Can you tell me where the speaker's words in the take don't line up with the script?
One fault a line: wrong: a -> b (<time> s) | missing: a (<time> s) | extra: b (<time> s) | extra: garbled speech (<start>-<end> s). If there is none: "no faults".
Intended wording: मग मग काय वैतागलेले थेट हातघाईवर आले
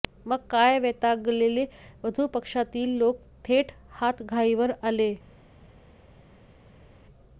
missing: मग (0.4 s)
extra: वधू पक्षातील लोक (2.0 s)